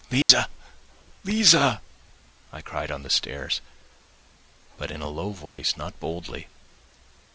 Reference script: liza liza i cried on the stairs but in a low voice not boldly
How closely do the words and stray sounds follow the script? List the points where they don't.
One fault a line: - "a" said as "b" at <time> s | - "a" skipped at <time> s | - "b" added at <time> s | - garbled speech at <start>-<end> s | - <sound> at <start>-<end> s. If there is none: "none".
- dropout at 0.2-0.3 s
- dropout at 5.5-5.6 s